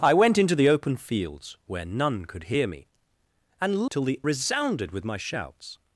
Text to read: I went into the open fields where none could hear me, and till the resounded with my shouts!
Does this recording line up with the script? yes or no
yes